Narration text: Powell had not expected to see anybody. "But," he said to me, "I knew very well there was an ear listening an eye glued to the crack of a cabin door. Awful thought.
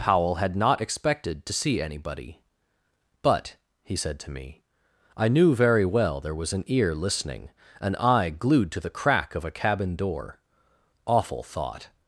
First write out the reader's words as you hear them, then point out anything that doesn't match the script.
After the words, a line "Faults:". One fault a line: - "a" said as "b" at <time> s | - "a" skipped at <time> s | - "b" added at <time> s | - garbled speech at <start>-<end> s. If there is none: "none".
Powell had not expected to see anybody. "But," he said to me, "I knew very well there was an ear listening an eye glued to the crack of a cabin door. Awful thought.
Faults:
none